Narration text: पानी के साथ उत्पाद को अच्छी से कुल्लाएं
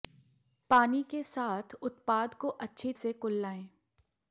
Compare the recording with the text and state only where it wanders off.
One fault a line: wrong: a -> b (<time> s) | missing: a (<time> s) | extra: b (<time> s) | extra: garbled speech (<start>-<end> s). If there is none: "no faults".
no faults